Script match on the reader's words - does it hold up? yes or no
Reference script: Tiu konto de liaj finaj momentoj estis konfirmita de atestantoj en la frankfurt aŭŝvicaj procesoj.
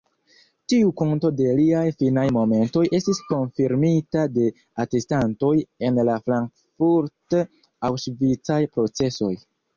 yes